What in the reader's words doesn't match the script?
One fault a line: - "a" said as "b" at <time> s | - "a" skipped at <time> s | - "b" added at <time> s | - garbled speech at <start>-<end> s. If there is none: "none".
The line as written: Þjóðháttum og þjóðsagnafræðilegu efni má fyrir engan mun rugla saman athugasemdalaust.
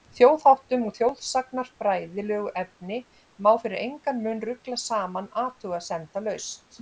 none